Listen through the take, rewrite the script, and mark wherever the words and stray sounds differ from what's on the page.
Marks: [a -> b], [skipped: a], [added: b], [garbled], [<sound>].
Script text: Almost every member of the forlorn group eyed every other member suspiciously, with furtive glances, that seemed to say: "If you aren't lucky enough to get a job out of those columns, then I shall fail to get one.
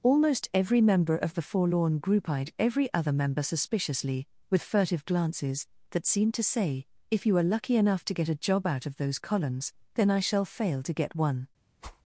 Almost every member of the forlorn group eyed every other member suspiciously, with furtive glances, that seemed to say: "If you [aren't -> are] lucky enough to get a job out of those columns, then I shall fail to get one. [whoosh]